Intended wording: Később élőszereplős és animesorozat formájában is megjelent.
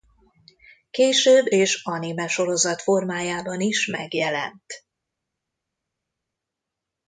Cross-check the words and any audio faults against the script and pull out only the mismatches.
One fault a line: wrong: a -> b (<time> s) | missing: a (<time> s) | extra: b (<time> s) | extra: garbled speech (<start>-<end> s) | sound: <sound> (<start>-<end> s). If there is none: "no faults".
missing: élőszereplős (1.4 s)